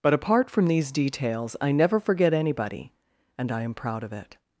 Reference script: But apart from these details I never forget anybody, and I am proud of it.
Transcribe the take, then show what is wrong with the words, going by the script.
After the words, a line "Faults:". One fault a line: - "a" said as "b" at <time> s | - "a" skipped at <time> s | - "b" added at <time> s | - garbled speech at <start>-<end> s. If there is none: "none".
But apart from these details I never forget anybody, and I am proud of it.
Faults:
none